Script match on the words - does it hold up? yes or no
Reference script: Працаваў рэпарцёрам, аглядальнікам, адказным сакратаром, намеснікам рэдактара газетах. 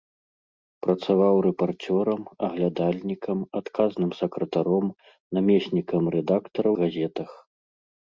yes